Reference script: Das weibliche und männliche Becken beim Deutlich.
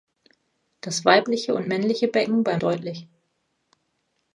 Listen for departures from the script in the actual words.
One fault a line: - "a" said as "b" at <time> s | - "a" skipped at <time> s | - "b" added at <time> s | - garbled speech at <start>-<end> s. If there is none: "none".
none